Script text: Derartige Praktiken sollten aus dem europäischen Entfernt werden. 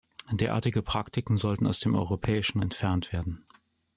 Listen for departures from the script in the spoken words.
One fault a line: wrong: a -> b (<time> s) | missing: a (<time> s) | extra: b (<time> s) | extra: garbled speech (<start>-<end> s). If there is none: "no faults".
no faults